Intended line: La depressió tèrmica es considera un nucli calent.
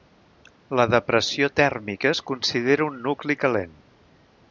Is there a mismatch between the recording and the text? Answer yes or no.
no